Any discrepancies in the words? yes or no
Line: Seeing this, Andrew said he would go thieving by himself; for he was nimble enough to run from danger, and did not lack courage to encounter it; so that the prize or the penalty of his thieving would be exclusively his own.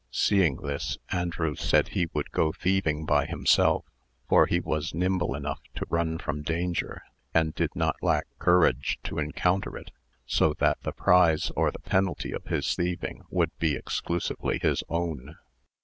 no